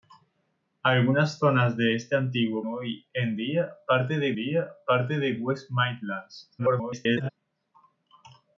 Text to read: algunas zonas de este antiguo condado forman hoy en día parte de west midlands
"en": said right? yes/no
no